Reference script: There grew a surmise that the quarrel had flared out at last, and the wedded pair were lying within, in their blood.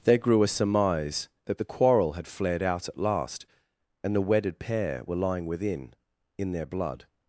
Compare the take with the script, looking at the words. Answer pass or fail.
pass